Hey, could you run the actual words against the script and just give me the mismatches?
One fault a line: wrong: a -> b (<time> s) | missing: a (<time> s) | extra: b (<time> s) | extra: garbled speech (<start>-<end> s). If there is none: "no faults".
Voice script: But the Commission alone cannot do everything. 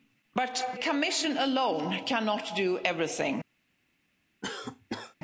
missing: the (0.8 s)